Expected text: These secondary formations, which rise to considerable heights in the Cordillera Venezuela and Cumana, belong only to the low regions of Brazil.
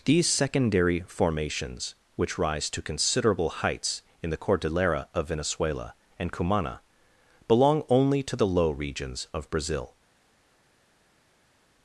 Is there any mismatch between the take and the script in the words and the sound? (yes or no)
yes